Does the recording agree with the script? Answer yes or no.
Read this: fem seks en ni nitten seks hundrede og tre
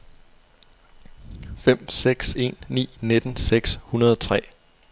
yes